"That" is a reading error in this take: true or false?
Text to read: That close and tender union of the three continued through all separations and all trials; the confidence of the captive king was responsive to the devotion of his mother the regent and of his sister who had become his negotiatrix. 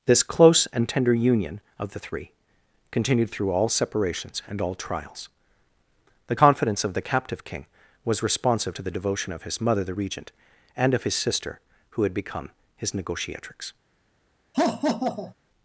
true